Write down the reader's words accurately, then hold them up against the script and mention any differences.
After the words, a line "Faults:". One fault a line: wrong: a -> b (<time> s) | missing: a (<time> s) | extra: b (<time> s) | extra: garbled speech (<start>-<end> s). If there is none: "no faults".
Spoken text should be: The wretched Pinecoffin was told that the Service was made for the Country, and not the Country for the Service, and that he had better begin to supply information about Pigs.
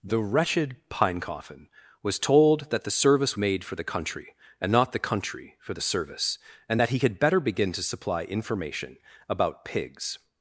The wretched Pinecoffin was told that the Service made for the Country, and not the Country for the Service, and that he had better begin to supply information about Pigs.
Faults:
missing: was (3.4 s)